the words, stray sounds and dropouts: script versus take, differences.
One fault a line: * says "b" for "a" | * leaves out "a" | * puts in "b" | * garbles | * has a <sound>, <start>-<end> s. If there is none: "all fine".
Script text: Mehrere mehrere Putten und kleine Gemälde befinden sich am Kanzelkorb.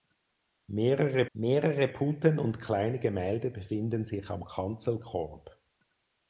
all fine